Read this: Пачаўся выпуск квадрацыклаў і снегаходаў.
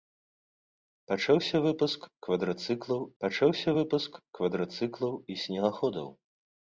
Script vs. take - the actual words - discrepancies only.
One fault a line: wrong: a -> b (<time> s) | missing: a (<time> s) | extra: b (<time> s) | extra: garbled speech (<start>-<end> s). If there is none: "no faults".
extra: пачаўся выпуск квадрацыклаў (3.2 s)